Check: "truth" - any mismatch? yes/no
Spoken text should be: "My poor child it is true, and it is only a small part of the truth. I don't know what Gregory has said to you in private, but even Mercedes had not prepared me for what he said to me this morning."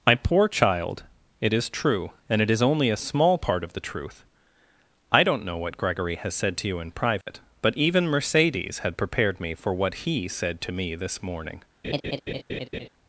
no